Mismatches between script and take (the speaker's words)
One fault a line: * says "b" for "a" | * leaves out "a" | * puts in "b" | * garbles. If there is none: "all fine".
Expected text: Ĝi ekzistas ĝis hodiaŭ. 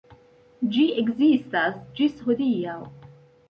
all fine